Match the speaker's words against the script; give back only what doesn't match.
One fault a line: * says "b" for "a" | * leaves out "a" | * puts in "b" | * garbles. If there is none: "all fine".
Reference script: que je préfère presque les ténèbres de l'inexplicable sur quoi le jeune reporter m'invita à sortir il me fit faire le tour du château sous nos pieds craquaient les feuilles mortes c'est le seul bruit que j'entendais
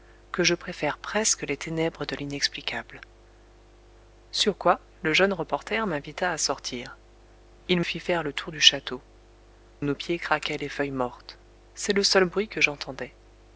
* leaves out "me"
* leaves out "sous"